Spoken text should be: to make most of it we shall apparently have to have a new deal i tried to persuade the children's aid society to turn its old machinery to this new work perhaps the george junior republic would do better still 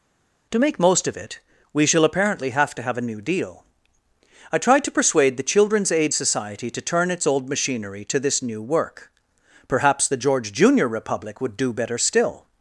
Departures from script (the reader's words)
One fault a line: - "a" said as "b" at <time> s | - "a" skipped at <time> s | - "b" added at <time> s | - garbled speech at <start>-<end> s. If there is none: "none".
none